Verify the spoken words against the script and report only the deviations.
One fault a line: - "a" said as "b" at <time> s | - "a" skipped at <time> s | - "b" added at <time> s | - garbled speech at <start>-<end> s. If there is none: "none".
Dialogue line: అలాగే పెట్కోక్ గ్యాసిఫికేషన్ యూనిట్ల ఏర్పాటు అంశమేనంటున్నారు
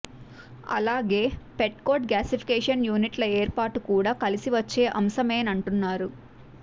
- "కూడా కలిసి వచ్చే" added at 3.9 s